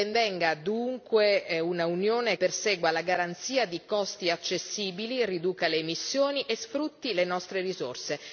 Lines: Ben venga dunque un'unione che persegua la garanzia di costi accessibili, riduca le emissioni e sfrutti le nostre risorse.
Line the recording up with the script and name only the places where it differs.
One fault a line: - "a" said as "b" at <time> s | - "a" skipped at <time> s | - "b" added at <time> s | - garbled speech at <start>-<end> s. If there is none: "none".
- "che" skipped at 2.4 s